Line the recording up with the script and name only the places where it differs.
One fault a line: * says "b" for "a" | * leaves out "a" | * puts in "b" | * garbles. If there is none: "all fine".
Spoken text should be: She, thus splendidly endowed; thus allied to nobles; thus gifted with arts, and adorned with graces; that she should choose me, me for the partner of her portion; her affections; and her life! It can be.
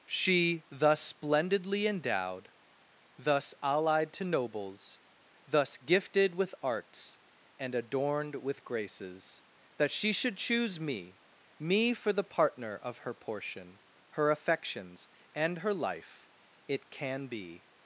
all fine